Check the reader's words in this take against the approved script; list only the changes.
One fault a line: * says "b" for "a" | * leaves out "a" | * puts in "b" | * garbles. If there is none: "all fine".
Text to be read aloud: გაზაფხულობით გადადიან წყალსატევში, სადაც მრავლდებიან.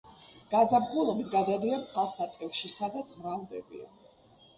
all fine